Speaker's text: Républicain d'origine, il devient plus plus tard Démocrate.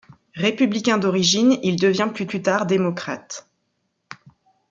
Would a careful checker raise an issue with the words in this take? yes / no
no